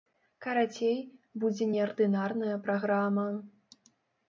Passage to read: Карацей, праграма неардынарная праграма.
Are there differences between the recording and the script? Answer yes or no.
yes